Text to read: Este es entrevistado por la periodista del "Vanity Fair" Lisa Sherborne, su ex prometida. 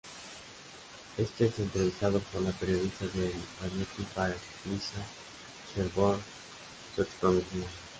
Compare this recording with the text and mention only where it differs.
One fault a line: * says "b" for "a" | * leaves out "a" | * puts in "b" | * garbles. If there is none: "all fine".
all fine